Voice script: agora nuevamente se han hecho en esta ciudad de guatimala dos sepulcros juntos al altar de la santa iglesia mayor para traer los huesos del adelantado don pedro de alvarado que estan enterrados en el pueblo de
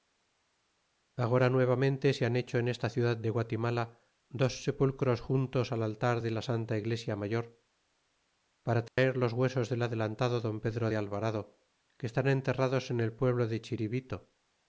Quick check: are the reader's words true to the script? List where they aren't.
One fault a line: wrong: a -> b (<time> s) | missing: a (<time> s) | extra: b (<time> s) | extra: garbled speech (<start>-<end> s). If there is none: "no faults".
no faults